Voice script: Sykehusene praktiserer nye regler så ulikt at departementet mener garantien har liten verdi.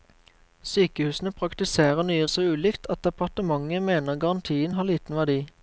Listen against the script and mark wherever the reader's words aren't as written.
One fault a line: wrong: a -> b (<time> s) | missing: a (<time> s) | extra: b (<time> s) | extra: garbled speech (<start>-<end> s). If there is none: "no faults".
missing: regler (2.2 s)